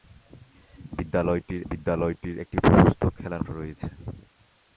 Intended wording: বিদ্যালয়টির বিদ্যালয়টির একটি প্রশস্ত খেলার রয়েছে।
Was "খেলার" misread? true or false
false